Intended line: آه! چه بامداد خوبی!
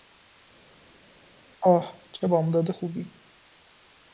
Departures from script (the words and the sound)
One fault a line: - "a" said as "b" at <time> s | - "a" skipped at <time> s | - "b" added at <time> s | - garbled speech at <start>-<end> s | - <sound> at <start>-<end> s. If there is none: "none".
none